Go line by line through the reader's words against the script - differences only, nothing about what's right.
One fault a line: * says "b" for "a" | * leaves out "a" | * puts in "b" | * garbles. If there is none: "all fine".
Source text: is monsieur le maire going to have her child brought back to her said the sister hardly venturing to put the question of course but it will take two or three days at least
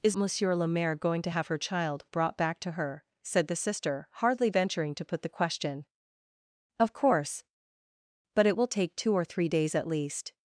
all fine